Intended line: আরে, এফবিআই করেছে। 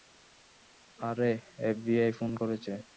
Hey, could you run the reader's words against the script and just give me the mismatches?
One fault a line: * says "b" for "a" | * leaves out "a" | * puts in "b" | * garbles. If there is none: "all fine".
* puts in "ফোন"